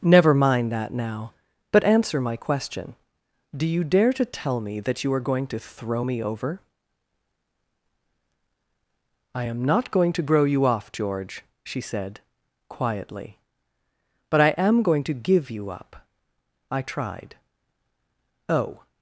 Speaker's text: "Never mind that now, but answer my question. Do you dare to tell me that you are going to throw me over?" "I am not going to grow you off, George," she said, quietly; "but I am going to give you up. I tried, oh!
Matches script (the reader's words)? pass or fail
pass